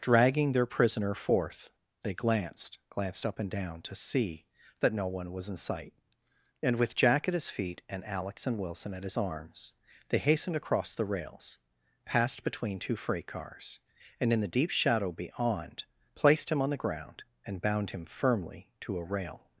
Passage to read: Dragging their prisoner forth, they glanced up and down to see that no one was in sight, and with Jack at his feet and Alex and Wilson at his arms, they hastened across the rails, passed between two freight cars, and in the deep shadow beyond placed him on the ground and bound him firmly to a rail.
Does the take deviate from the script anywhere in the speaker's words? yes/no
yes